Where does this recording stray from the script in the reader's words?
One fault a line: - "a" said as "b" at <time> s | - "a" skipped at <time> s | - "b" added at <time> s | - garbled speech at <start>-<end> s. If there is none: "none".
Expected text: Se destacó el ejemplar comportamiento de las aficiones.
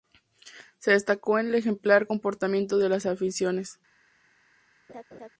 none